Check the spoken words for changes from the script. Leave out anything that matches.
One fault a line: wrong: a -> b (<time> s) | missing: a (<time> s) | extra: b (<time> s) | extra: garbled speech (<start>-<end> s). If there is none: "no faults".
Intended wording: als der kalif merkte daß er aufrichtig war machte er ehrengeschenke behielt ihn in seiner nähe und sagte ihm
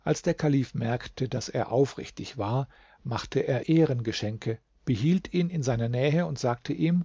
no faults